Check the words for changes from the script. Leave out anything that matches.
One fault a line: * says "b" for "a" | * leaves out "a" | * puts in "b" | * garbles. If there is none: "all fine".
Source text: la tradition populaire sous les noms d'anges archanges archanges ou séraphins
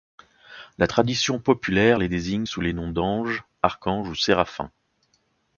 * puts in "les désigne"
* leaves out "archanges"